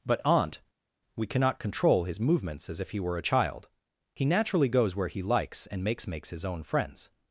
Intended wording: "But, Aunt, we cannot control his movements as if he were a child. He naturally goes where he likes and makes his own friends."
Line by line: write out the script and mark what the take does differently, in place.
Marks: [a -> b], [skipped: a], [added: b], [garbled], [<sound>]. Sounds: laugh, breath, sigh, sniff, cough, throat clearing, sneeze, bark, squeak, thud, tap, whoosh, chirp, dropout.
"But, Aunt, we cannot control his movements as if he were a child. He naturally goes where he likes and makes [added: makes] his own friends."